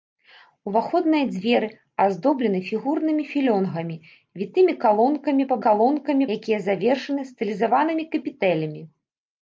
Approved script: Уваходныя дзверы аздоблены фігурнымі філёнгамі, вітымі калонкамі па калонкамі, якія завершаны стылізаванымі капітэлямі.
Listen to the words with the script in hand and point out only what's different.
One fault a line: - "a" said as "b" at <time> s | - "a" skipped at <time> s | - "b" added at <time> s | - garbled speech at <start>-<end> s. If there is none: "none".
none